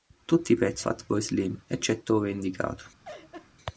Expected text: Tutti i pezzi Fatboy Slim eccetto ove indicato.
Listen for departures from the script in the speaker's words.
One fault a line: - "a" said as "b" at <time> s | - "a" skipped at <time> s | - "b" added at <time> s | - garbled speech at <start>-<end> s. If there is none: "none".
none